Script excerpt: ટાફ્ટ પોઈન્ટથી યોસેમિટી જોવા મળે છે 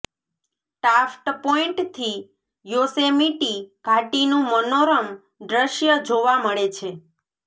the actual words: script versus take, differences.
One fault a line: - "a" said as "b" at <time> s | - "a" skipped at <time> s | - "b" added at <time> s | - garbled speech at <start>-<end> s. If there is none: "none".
- "ઘાટીનું મનોરમ દૃશ્ય" added at 3.9 s